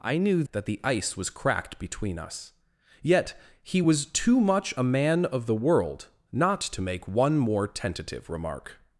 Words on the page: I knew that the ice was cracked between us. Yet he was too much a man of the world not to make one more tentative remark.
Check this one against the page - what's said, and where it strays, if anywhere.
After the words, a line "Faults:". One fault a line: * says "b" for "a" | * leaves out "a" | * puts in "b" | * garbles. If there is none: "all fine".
I knew that the ice was cracked between us. Yet he was too much a man of the world not to make one more tentative remark.
Faults:
all fine